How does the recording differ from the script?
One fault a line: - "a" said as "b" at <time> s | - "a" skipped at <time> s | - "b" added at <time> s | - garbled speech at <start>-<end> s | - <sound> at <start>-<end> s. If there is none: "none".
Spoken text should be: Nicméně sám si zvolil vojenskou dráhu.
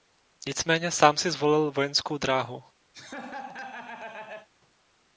- laugh at 2.9-4.5 s